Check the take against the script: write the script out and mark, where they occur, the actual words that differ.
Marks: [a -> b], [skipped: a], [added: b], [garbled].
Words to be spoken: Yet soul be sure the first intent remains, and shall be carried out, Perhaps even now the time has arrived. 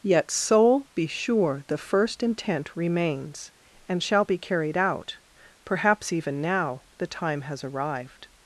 Yet soul be sure the first intent remains, and shall be carried out, Perhaps even now the time has arrived.